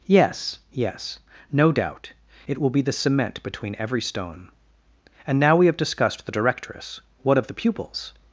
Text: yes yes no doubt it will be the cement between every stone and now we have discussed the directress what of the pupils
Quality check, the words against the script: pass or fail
pass